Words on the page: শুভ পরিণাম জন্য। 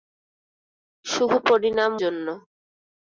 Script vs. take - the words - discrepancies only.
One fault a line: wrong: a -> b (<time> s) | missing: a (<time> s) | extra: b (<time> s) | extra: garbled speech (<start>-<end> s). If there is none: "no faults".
no faults